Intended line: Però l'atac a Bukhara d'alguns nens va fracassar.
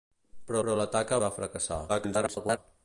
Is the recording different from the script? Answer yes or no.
yes